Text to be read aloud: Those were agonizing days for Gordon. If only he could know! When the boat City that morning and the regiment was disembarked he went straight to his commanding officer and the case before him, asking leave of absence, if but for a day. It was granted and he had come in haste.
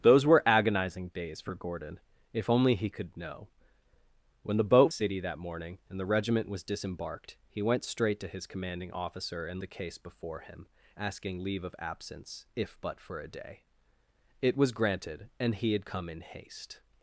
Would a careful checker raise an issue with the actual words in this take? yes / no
no